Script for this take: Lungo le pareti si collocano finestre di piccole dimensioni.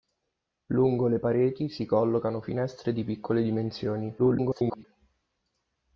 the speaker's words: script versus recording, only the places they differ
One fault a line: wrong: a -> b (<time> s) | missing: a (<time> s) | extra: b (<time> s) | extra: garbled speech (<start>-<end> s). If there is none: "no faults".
extra: garbled speech (4.2-4.8 s)